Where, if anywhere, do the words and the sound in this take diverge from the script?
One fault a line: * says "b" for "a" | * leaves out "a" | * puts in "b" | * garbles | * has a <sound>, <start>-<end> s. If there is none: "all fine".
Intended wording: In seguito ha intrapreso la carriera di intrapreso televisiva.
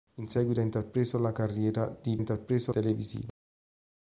all fine